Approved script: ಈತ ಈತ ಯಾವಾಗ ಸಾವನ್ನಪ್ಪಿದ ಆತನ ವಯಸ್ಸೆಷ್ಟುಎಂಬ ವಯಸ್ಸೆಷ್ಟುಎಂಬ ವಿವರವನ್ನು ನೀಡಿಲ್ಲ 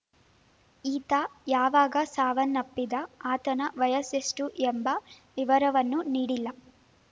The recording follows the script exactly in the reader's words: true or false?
false